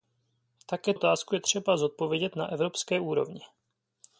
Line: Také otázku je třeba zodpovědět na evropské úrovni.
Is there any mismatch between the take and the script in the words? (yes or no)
no